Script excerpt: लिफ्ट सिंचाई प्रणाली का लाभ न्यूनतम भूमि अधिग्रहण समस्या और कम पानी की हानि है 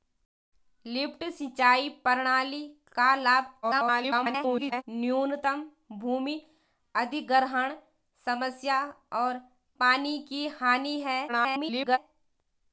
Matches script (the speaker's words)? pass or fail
fail